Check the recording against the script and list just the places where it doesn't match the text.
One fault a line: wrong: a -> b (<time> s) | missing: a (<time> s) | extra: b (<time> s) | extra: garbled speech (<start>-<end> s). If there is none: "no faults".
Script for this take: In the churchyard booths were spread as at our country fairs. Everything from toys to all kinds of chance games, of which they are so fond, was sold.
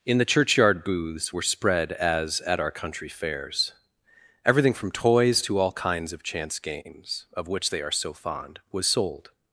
no faults